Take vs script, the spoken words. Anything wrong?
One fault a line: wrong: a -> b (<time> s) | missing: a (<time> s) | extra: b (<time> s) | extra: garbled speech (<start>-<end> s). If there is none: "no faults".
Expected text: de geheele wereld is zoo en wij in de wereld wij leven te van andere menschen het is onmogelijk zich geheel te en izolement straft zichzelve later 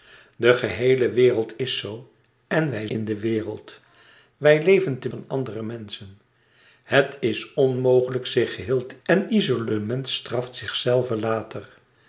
no faults